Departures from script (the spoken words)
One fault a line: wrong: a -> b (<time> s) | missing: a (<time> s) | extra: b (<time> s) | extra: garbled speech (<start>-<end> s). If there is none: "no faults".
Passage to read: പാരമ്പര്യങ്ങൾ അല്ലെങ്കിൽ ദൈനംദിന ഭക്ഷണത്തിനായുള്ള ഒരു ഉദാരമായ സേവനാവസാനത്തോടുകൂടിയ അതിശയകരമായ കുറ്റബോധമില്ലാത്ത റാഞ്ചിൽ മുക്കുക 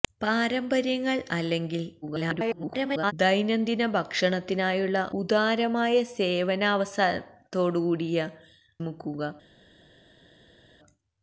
extra: garbled speech (2.0-3.1 s)
missing: ഒരു (5.1 s)
missing: അതിശയകരമായ കുറ്റബോധമില്ലാത്ത റാഞ്ചിൽ (8.3 s)